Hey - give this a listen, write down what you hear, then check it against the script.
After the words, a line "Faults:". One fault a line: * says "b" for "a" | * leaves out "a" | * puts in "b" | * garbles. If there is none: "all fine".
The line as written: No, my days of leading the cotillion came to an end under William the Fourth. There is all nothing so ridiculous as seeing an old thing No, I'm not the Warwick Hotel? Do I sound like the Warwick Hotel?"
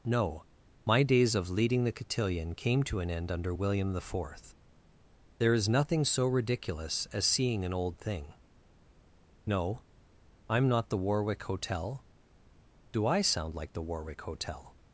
No, my days of leading the cotillion came to an end under William the Fourth. There is nothing so ridiculous as seeing an old thing No, I'm not the Warwick Hotel? Do I sound like the Warwick Hotel?"
Faults:
* leaves out "all"